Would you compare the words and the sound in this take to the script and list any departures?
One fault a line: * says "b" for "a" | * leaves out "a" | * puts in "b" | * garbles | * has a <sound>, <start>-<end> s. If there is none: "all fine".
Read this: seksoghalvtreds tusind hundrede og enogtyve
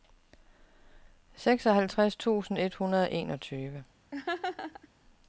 * puts in "et"
* has a laugh, 4.1-4.9 s